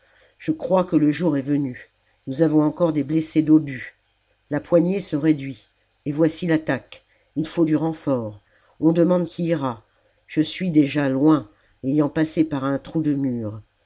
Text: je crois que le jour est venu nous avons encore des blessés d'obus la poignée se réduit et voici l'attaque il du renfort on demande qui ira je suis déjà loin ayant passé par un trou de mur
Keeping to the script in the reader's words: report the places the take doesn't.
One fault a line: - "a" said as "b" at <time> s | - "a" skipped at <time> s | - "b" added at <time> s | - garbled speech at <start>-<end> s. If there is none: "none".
- "faut" added at 7.5 s